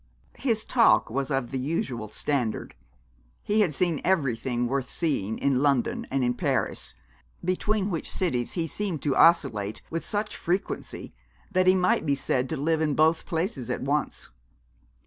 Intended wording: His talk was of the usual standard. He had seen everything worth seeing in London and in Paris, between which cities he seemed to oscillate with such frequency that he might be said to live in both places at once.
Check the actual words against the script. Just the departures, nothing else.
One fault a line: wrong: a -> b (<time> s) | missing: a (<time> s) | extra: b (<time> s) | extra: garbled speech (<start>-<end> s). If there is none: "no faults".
no faults